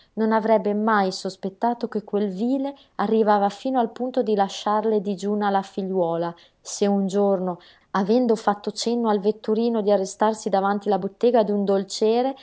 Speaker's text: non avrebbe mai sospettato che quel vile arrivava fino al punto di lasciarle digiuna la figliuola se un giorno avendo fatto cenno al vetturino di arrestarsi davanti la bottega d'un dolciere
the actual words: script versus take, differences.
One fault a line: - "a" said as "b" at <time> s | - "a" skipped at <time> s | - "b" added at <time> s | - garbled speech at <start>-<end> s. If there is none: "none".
none